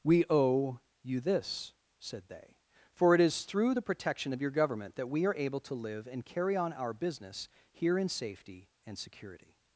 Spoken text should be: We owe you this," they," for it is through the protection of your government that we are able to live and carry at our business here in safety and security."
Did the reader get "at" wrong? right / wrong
wrong